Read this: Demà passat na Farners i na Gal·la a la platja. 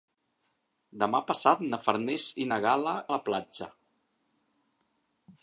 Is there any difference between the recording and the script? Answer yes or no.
no